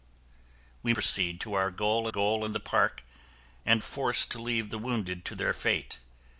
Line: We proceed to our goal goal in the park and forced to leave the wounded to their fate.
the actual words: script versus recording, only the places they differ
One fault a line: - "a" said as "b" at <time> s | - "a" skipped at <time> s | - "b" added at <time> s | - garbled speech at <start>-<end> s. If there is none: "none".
none